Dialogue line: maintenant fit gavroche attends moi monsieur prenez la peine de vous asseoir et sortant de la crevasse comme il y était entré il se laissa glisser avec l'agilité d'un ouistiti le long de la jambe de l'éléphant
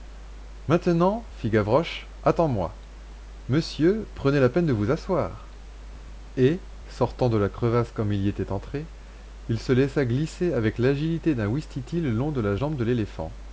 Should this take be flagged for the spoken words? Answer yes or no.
no